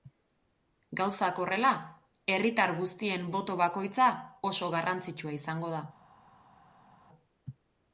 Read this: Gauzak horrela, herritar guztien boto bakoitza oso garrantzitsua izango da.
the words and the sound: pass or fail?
pass